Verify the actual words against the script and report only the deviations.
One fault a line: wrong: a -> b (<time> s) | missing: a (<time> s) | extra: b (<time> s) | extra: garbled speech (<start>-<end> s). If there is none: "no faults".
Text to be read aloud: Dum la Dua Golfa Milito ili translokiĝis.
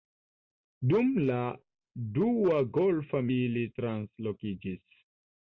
missing: Milito (3.2 s)